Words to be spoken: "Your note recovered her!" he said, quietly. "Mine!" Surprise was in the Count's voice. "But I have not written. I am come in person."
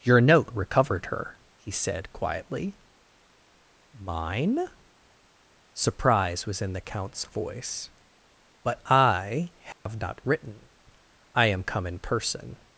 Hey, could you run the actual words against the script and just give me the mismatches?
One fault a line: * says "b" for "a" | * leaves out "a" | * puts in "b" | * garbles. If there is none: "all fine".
all fine